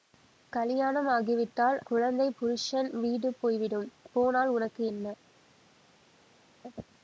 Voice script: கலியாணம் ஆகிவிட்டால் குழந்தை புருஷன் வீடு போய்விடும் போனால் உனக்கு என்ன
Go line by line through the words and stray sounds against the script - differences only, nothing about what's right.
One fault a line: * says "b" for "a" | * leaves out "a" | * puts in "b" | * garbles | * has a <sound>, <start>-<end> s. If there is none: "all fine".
all fine